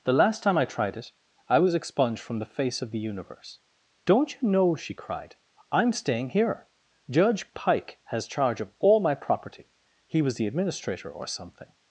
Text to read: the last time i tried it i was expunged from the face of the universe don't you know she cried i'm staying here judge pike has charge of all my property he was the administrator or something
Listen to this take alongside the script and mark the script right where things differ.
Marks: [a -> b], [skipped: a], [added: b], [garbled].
the last time i tried it i was expunged from the face of the universe don't you know she cried i'm staying here judge pike has charge of all my property he was the administrator or something